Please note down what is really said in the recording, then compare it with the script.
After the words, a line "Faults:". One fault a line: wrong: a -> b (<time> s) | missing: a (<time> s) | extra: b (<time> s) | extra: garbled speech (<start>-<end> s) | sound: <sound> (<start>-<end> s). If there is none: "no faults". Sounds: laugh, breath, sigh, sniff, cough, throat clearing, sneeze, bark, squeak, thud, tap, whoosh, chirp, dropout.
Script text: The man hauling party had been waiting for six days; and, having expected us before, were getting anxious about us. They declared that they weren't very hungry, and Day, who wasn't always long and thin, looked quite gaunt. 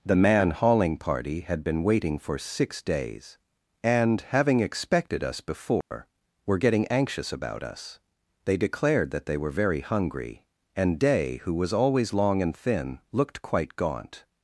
The man hauling party had been waiting for six days; and, having expected us before, were getting anxious about us. They declared that they were very hungry, and Day, who was always long and thin, looked quite gaunt.
Faults:
sound: dropout (5.8-5.9 s)
wrong: weren't -> were (9.4 s)
wrong: wasn't -> was (11.5 s)